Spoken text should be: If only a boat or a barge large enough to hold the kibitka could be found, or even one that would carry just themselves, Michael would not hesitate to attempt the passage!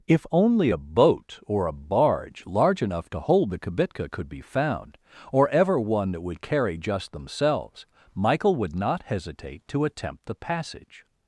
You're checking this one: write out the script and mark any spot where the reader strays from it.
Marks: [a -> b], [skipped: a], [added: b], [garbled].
If only a boat or a barge large enough to hold the kibitka could be found, or [even -> ever] one that would carry just themselves, Michael would not hesitate to attempt the passage!